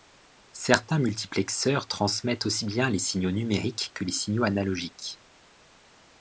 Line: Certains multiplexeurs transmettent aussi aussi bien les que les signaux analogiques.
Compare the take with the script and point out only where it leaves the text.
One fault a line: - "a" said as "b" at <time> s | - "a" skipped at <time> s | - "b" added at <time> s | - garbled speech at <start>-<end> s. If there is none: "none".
- "aussi" skipped at 2.6 s
- "signaux numériques" added at 3.0 s